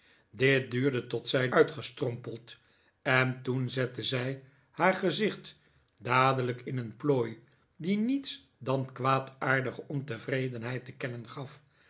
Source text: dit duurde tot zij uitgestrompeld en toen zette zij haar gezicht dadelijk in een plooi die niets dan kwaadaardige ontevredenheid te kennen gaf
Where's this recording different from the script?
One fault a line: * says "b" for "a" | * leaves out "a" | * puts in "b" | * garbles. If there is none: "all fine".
all fine